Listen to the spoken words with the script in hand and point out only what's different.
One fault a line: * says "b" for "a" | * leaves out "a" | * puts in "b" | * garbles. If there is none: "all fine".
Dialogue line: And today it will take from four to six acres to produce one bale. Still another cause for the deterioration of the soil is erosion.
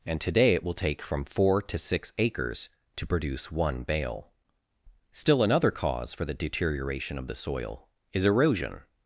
all fine